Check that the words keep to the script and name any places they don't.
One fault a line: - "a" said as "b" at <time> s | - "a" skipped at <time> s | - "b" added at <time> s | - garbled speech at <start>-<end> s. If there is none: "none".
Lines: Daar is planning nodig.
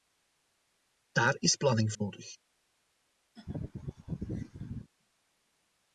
none